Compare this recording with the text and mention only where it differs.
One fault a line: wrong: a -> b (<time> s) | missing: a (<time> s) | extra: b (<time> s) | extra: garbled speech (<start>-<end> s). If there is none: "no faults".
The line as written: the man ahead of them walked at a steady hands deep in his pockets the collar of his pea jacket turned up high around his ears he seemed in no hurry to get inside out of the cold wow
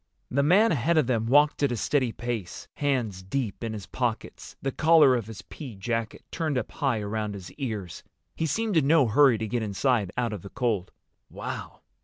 extra: pace (2.1 s)